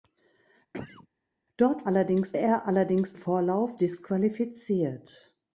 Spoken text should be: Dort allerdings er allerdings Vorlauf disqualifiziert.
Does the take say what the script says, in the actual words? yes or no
yes